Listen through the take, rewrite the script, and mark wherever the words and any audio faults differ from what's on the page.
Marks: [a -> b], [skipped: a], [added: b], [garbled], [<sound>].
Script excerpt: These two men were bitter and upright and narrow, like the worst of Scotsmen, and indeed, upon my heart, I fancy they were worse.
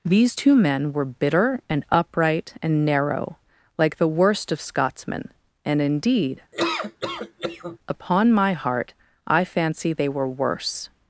These two men were bitter and upright and narrow, like the worst of Scotsmen, and indeed, [laugh] upon my heart, I fancy they were worse.